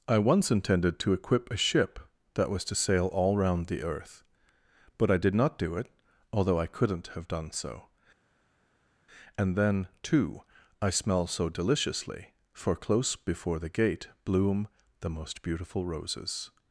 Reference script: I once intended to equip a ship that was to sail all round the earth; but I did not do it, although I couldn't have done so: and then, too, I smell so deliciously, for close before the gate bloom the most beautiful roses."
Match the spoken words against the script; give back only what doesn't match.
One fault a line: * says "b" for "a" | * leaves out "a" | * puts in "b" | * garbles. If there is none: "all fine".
all fine